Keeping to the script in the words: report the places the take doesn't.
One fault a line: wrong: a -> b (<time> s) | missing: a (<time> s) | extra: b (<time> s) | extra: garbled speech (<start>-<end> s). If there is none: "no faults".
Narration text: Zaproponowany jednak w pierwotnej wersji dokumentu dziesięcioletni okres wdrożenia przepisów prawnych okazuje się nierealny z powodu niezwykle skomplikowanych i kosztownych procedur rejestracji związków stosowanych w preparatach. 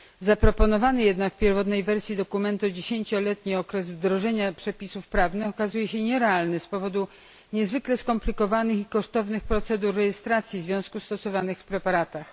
no faults